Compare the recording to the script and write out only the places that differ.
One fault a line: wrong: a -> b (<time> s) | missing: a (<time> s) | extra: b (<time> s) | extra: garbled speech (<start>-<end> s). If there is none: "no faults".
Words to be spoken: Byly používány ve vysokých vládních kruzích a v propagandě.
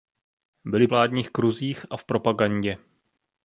missing: používány ve vysokých (0.9 s)